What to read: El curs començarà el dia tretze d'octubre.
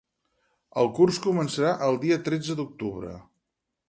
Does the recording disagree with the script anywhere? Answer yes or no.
no